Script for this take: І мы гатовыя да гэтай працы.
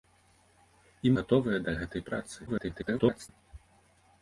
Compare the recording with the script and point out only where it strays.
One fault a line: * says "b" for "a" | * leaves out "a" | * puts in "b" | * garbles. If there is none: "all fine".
* leaves out "мы"
* garbles